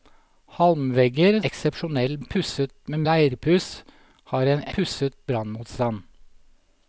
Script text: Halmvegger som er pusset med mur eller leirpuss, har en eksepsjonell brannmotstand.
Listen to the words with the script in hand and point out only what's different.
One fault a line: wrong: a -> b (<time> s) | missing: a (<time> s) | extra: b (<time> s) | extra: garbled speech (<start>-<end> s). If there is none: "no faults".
wrong: som -> eksepsjonell (1.5 s)
missing: mur eller (3.0 s)
wrong: eksepsjonell -> pusset (4.8 s)